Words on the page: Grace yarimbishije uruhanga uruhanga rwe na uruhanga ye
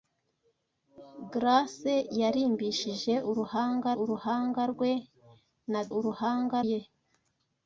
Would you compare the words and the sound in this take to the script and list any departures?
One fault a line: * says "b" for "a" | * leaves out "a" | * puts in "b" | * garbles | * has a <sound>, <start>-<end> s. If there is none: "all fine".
all fine